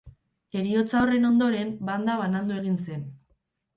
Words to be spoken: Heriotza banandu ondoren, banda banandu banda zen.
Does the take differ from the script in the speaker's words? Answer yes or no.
yes